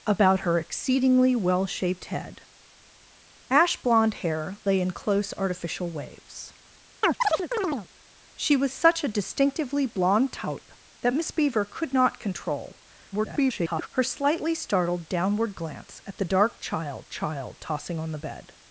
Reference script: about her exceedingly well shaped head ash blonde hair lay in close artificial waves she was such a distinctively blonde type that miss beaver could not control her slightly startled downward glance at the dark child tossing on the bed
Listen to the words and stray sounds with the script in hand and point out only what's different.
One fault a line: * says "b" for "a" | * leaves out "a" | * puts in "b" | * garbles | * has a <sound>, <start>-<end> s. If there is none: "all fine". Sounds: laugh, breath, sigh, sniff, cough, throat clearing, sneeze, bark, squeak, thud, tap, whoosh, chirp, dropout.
* has a chirp, 7.0-7.9 s
* garbles
* puts in "child"